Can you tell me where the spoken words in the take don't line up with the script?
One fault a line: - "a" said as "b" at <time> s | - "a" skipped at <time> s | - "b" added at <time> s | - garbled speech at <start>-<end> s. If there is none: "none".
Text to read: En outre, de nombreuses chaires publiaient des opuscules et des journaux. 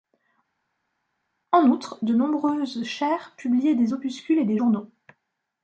none